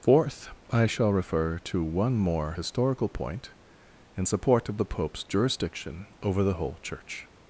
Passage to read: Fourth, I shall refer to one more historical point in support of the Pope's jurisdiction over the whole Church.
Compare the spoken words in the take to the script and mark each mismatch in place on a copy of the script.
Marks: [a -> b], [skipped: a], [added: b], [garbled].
Fourth, I shall refer to one more historical point in support of the Pope's jurisdiction over the whole Church.